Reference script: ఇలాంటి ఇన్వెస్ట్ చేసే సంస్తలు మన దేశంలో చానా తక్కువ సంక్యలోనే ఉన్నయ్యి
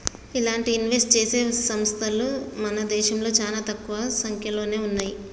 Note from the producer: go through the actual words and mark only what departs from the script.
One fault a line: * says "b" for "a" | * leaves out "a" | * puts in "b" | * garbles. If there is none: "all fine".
all fine